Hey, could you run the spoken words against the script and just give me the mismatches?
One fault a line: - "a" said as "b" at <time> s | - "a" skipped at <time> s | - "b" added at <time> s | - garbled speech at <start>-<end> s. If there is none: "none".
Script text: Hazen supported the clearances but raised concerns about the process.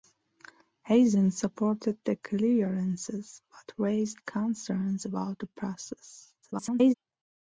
- garbled speech at 6.4-6.9 s